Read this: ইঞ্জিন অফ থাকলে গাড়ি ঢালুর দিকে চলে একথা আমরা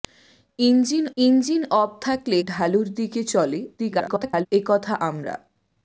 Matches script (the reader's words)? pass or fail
fail